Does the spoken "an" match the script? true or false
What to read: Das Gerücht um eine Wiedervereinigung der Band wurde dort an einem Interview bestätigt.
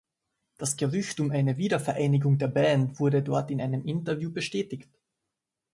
false